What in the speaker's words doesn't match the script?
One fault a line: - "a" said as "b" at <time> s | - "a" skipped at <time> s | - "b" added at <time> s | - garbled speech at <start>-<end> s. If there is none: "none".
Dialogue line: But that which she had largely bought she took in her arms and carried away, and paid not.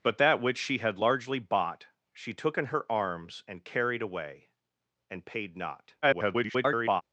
- garbled speech at 6.0-7.0 s